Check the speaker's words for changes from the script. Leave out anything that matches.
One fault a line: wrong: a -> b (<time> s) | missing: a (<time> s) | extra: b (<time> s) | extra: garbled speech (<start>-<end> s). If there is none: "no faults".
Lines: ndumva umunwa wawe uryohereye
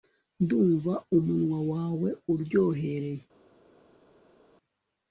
no faults